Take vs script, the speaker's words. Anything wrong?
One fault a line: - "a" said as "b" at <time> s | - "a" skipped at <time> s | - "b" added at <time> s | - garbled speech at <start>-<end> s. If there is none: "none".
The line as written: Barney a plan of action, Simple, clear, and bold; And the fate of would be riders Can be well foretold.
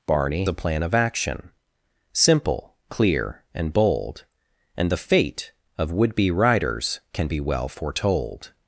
none